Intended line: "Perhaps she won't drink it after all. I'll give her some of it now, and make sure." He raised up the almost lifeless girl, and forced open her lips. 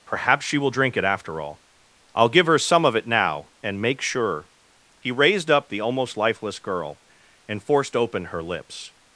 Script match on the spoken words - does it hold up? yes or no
no